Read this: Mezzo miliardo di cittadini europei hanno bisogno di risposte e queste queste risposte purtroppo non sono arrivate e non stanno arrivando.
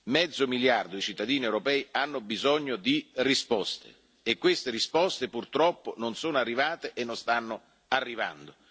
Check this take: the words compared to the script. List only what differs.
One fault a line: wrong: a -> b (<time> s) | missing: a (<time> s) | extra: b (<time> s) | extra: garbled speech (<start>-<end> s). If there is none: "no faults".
missing: queste (4.7 s)